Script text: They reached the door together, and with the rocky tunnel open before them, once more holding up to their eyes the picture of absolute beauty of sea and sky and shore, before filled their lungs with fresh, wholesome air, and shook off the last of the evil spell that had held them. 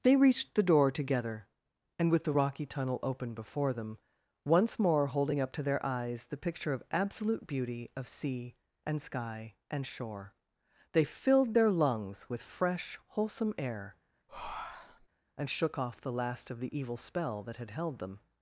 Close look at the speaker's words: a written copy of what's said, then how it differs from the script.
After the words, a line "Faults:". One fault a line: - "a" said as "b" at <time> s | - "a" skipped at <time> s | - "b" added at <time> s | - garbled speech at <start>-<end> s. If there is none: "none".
They reached the door together, and with the rocky tunnel open before them, once more holding up to their eyes the picture of absolute beauty of sea and sky and shore, they filled their lungs with fresh, wholesome air, and shook off the last of the evil spell that had held them.
Faults:
- "before" said as "they" at 10.9 s